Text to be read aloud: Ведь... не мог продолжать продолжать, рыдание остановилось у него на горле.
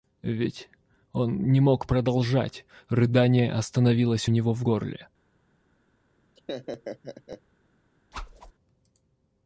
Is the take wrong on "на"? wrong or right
wrong